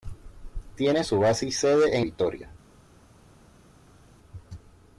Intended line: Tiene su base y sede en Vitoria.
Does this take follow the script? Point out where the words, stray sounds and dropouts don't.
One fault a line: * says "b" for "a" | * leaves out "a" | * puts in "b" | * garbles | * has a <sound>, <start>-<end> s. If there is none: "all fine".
all fine